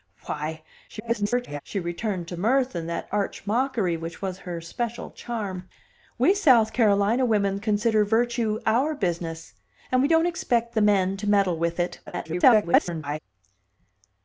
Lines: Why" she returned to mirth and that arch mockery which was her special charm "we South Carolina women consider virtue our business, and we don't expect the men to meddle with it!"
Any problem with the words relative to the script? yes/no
yes